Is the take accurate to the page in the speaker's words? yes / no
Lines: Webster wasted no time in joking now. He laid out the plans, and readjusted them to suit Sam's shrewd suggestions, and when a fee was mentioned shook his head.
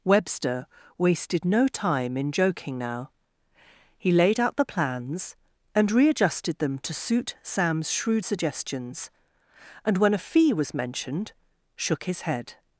yes